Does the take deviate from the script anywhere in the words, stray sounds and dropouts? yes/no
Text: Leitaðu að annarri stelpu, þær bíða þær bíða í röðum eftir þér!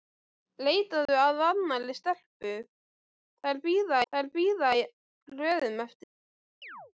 yes